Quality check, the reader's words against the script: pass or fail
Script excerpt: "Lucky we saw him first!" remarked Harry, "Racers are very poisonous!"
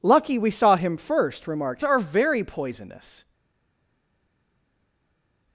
fail